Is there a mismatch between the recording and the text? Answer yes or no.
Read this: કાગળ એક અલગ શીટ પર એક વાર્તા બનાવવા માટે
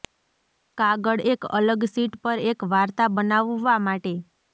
no